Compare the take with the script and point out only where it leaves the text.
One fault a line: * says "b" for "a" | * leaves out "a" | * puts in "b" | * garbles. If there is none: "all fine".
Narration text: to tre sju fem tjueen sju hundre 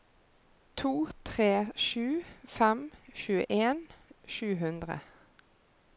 all fine